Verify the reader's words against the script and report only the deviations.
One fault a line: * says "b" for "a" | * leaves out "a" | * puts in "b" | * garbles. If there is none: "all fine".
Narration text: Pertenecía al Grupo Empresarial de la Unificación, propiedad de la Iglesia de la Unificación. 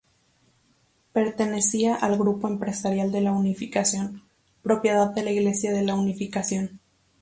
all fine